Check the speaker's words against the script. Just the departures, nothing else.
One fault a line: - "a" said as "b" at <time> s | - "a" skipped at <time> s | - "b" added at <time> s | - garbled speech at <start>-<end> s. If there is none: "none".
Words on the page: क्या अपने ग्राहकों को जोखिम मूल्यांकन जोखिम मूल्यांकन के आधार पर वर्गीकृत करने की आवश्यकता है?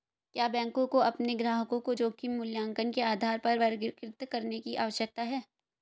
- "बैंकों को" added at 0.5 s
- "जोखिम मूल्यांकन" skipped at 2.9 s